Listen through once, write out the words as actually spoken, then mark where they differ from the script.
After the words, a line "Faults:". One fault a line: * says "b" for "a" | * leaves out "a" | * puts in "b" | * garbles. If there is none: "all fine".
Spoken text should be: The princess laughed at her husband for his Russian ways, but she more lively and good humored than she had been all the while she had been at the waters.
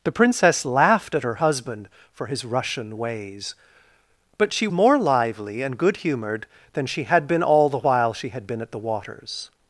The princess laughed at her husband for his Russian ways, but she more lively and good humored than she had been all the while she had been at the waters.
Faults:
all fine